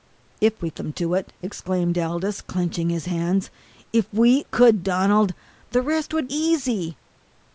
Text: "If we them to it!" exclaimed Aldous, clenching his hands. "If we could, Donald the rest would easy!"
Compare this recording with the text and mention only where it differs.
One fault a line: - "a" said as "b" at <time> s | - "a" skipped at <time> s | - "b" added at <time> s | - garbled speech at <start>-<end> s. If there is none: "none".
none